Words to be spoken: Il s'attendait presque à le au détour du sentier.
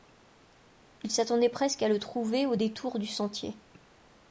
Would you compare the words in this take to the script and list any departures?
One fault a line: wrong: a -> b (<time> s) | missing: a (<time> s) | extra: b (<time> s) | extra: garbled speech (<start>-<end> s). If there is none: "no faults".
extra: trouver (2.0 s)